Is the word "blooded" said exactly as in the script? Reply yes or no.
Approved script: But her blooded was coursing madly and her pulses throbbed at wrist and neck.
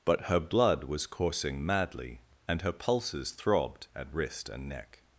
no